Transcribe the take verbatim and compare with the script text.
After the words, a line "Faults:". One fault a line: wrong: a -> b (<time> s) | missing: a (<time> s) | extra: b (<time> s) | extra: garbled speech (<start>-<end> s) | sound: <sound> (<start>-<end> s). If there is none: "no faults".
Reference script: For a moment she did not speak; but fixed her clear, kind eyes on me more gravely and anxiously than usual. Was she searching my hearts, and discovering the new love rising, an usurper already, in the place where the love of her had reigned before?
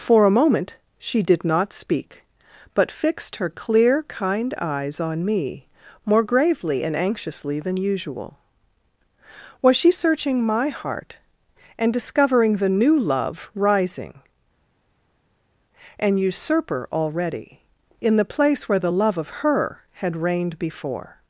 For a moment she did not speak; but fixed her clear, kind eyes on me more gravely and anxiously than usual. Was she searching my heart, and discovering the new love rising, an usurper already, in the place where the love of her had reigned before?
Faults:
wrong: hearts -> heart (10.7 s)